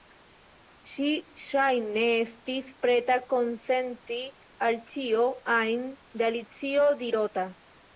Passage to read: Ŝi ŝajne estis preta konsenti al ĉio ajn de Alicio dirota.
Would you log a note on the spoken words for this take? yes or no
no